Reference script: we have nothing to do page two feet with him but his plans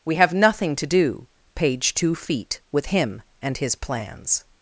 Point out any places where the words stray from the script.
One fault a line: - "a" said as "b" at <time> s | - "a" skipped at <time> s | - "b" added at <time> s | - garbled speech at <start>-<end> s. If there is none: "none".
- "but" said as "and" at 3.4 s